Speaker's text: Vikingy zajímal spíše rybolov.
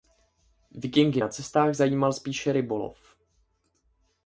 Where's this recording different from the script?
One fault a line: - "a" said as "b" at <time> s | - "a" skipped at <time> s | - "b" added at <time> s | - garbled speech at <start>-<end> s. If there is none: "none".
- "na cestách" added at 1.2 s